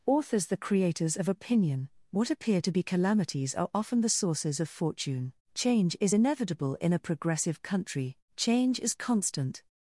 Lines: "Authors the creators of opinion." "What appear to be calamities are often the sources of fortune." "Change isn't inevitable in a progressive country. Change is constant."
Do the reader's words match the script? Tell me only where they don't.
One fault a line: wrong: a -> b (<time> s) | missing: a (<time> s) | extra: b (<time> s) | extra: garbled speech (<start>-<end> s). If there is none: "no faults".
wrong: isn't -> is (6.0 s)